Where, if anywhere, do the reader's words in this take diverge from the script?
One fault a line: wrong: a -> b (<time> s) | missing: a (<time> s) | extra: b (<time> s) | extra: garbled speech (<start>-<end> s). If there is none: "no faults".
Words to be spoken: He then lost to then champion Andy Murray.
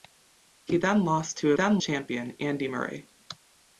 no faults